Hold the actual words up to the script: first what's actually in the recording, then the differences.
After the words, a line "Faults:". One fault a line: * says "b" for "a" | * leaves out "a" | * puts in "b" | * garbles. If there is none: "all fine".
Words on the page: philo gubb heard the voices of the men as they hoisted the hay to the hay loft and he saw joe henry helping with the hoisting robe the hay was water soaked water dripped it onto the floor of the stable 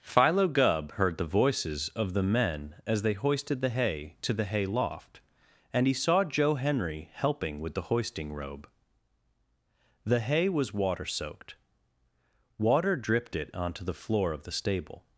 philo gubb heard the voices of the men as they hoisted the hay to the hay loft and he saw joe henry helping with the hoisting robe the hay was water soaked water dripped it onto the floor of the stable
Faults:
all fine